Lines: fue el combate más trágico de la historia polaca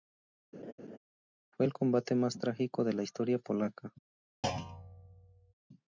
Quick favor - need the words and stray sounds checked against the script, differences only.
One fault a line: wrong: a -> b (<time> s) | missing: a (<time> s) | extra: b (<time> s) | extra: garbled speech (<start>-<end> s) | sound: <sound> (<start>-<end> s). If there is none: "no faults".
sound: laugh (0.5-1.0 s)
sound: thud (4.4-5.5 s)